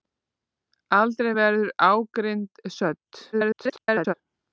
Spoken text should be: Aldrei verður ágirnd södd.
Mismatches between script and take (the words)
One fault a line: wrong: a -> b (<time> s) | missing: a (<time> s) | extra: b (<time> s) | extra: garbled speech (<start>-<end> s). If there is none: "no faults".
extra: garbled speech (3.3-4.1 s)